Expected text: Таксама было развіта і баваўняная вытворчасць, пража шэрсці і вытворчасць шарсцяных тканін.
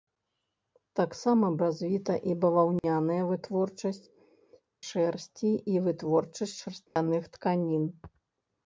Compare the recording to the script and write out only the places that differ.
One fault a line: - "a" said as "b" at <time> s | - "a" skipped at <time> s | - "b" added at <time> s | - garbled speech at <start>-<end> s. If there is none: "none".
- "было" skipped at 1.5 s
- "пража" skipped at 4.0 s